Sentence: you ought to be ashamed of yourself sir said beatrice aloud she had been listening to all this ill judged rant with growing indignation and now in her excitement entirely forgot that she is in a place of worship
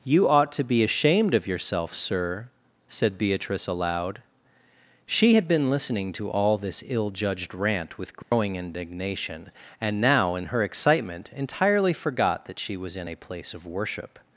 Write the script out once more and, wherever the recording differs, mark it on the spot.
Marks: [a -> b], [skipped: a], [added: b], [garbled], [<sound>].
you ought to be ashamed of yourself sir said beatrice aloud she had been listening to all this ill judged rant with growing [dropout] indignation and now in her excitement entirely forgot that she [is -> was] in a place of worship